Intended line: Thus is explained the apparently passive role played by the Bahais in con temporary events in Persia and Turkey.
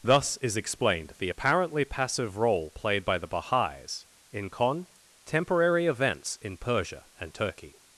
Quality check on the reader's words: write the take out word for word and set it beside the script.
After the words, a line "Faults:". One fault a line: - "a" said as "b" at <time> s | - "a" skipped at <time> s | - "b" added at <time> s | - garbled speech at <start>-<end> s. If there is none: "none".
Thus is explained the apparently passive role played by the Bahais in con temporary events in Persia and Turkey.
Faults:
none